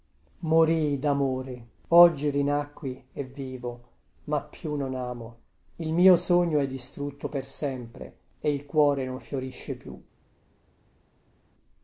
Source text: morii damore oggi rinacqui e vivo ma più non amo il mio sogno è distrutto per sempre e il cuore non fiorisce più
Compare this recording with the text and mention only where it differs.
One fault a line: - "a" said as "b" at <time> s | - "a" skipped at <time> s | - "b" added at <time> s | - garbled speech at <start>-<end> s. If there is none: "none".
none